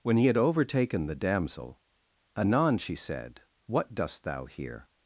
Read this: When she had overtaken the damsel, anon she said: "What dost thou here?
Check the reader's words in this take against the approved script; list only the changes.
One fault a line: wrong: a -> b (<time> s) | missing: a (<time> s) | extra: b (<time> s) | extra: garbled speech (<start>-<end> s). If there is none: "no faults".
wrong: she -> he (0.2 s)